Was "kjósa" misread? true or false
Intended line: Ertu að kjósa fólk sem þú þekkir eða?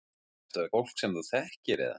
true